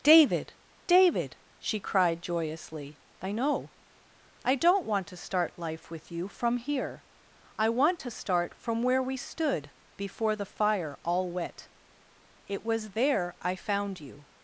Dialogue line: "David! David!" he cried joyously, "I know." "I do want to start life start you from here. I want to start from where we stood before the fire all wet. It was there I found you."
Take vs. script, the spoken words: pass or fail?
fail